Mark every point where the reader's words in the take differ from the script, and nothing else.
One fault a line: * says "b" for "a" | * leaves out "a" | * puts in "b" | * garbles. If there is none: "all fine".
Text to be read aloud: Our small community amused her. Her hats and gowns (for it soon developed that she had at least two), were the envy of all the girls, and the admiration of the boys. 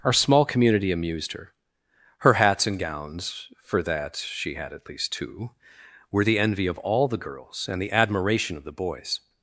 * leaves out "it soon developed"